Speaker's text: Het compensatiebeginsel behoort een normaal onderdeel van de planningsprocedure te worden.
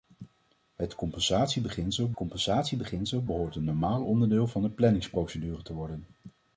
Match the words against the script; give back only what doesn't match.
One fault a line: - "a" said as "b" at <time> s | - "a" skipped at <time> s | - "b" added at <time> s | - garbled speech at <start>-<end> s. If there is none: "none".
- "compensatiebeginsel" added at 2.1 s